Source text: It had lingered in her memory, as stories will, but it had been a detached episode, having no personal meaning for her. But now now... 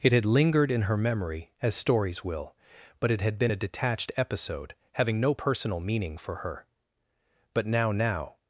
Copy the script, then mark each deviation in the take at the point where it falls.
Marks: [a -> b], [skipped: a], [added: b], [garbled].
It had lingered in her memory, as stories will, but it had been a detached episode, having no personal meaning for her. But now now...